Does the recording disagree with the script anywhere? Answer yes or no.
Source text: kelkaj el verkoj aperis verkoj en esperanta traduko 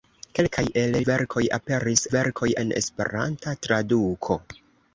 no